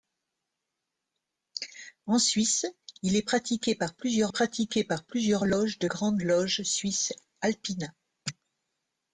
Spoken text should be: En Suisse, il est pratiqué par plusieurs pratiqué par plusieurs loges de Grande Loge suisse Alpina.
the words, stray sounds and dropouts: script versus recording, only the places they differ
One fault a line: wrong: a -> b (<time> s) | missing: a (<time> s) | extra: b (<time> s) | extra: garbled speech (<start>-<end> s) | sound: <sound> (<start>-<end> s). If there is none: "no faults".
no faults